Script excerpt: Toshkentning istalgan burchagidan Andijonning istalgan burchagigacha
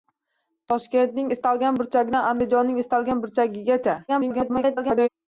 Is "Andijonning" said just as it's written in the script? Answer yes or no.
yes